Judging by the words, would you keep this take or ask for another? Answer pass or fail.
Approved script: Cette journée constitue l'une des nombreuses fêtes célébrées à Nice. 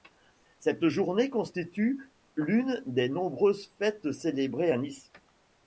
pass